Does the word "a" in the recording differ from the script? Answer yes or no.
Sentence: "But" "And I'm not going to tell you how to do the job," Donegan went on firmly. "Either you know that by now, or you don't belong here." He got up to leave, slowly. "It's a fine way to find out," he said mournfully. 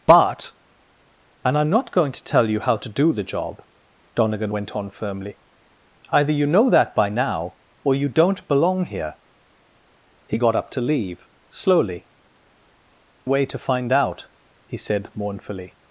yes